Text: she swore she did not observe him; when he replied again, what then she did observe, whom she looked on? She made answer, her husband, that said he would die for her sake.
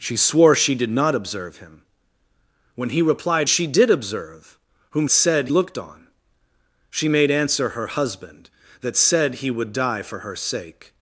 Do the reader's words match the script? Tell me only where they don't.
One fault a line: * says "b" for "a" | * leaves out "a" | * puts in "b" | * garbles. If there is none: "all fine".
* leaves out "again what then"
* says "said" for "she"